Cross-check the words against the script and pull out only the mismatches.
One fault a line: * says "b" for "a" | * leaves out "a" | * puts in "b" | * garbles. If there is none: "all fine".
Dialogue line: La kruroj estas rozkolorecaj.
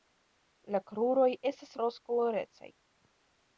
all fine